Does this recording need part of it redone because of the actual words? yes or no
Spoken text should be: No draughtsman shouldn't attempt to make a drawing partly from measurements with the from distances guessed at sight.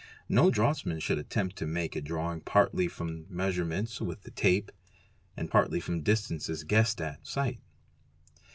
yes